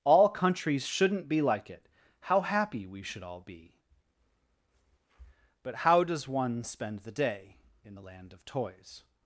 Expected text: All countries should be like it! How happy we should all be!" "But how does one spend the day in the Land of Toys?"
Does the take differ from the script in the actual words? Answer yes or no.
yes